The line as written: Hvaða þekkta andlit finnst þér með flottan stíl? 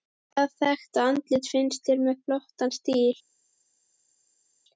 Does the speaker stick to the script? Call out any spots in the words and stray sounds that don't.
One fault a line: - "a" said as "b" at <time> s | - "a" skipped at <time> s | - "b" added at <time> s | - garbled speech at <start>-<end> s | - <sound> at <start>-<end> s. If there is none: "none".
none